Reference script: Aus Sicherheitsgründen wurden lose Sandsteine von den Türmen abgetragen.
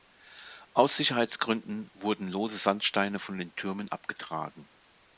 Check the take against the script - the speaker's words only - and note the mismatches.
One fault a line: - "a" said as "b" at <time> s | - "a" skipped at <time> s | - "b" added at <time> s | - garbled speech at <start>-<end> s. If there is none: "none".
none